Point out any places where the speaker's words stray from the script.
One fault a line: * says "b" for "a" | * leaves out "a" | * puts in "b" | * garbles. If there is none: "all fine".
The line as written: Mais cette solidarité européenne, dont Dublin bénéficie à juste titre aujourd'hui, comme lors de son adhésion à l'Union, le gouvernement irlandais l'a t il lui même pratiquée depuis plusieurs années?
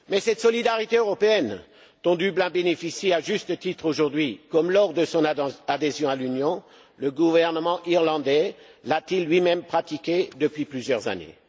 all fine